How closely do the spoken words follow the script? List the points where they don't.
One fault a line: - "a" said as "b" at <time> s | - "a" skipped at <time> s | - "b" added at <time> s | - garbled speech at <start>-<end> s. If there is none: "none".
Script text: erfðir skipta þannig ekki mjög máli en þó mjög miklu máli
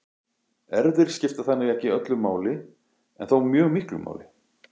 - "mjög" said as "öllu" at 2.0 s